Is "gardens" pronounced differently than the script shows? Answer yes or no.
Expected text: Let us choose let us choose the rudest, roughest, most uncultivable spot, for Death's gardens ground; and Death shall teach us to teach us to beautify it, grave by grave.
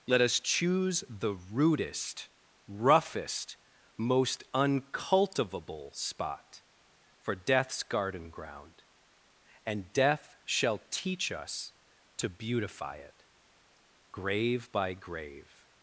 yes